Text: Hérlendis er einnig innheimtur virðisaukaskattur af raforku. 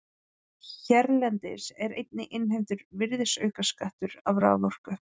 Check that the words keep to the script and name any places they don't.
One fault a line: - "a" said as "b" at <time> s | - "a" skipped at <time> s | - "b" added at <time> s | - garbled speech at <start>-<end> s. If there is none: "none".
none